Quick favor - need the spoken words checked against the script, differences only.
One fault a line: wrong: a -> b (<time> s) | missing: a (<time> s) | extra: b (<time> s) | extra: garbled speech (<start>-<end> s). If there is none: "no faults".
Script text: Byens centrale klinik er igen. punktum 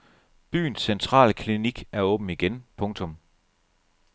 extra: åben (2.0 s)